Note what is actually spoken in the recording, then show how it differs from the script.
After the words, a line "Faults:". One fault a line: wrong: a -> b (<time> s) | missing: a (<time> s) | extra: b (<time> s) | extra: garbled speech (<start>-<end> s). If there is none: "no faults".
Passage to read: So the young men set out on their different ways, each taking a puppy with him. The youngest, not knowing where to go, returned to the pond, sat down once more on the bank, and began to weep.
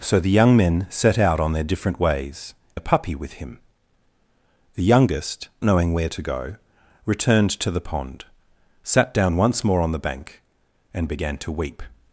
So the young men set out on their different ways, a puppy with him. The youngest, knowing where to go, returned to the pond, sat down once more on the bank, and began to weep.
Faults:
missing: each taking (2.5 s)
missing: not (5.5 s)